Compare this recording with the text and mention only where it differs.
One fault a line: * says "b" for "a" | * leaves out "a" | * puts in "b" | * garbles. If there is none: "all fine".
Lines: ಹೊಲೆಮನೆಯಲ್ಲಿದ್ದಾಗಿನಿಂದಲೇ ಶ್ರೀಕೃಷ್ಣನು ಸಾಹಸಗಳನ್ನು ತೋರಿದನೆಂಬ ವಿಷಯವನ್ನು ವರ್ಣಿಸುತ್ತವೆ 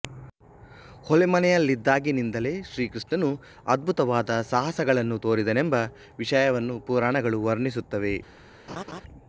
* puts in "ಅದ್ಭುತವಾದ"
* puts in "ಪುರಾಣಗಳು"